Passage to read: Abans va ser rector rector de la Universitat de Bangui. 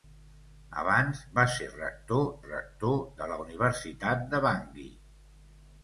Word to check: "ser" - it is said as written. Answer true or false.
true